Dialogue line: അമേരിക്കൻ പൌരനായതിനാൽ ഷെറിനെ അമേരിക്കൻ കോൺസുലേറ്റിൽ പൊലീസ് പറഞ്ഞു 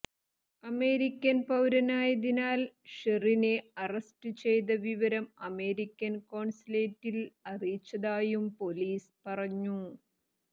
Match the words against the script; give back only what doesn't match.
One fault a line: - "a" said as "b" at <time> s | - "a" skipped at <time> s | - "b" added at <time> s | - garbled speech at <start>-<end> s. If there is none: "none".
- "അറസ്റ്റ് ചെയ്ത വിവരം" added at 3.8 s
- "അറിയിച്ചതായും" added at 7.5 s